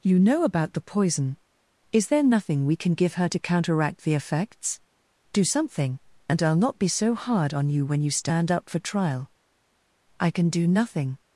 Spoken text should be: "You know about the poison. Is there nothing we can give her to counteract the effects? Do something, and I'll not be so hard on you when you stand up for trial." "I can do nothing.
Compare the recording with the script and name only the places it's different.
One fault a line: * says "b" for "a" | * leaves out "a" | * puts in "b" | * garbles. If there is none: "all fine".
all fine